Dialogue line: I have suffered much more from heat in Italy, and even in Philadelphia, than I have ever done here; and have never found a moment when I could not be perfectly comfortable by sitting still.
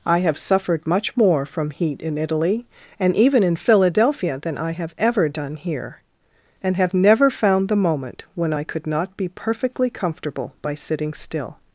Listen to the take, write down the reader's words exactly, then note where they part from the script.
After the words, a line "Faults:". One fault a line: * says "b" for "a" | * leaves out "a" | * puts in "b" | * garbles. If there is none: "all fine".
I have suffered much more from heat in Italy, and even in Philadelphia, than I have ever done here; and have never found the moment when I could not be perfectly comfortable by sitting still.
Faults:
* says "the" for "a"